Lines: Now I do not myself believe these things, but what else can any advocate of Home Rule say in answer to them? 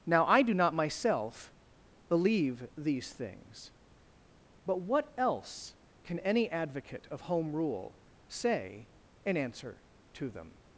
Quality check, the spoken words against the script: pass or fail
pass